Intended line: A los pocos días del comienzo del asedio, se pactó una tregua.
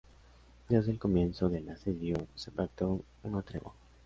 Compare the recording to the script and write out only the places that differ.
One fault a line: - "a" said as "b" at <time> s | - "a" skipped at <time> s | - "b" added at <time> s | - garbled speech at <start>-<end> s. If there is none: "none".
- "los pocos" skipped at 0.7 s